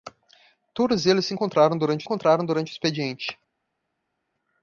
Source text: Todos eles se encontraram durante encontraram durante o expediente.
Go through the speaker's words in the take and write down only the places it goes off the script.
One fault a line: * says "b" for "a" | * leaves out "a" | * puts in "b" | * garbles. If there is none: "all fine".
all fine